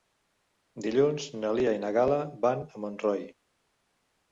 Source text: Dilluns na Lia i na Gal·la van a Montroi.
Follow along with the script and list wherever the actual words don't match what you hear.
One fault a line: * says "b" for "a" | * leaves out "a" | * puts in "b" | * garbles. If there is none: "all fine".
all fine